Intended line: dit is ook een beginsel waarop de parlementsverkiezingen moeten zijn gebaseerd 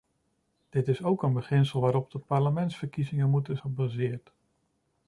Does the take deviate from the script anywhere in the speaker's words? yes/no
yes